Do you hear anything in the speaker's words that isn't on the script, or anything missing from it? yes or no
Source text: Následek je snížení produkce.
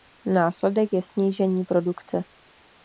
no